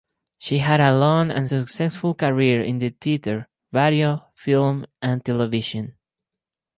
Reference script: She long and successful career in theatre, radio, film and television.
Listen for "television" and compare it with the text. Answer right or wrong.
right